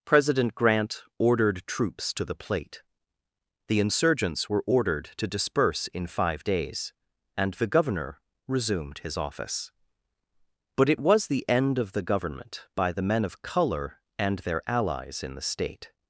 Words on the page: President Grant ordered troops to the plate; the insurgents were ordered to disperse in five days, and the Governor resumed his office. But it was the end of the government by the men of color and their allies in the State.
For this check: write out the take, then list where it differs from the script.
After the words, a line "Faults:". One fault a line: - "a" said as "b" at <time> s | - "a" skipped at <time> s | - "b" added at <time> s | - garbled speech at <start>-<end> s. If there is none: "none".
President Grant ordered troops to the plate; the insurgents were ordered to disperse in five days, and the Governor resumed his office. But it was the end of the government by the men of color and their allies in the State.
Faults:
none